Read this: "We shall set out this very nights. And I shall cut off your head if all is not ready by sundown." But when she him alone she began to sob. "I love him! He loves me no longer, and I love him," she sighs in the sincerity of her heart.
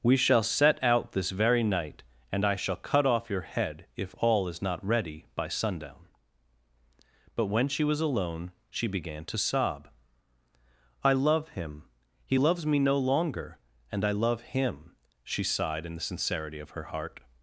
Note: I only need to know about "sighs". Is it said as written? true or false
false